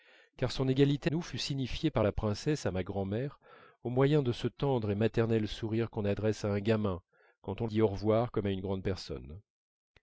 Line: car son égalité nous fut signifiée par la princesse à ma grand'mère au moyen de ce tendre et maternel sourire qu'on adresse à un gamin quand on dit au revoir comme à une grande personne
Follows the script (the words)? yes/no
yes